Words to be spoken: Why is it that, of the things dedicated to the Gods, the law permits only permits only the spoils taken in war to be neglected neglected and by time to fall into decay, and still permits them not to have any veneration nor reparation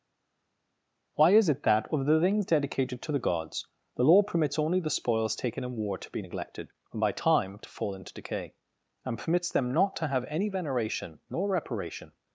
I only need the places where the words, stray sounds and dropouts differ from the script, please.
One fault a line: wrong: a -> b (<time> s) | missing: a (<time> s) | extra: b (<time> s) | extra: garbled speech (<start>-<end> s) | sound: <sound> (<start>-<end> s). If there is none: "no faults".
missing: permits only (4.8 s)
missing: neglected (6.7 s)
missing: still (9.2 s)